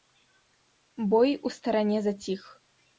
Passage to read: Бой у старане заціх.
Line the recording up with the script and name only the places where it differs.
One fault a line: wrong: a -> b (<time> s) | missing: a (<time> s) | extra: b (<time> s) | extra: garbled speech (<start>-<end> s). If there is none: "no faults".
no faults